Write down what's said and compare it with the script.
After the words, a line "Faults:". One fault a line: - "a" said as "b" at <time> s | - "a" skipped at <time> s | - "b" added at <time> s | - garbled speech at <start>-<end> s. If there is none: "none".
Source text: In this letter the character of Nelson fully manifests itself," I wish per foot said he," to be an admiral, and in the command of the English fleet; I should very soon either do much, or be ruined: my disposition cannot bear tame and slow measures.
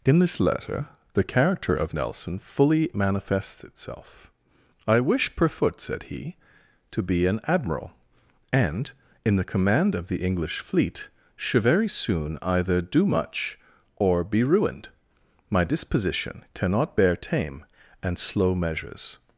In this letter the character of Nelson fully manifests itself," I wish per foot said he," to be an admiral, and in the command of the English fleet; should very soon either do much, or be ruined: my disposition cannot bear tame and slow measures.
Faults:
- "I" skipped at 11.1 s